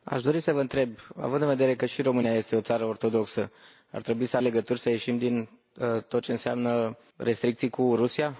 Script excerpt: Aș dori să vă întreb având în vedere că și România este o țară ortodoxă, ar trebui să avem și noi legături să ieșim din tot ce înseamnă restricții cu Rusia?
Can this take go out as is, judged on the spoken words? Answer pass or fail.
fail